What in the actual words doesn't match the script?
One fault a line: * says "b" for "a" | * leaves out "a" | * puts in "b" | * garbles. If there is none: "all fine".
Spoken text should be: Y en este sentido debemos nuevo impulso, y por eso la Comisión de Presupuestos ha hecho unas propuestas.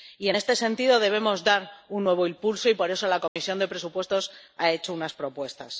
* puts in "dar un"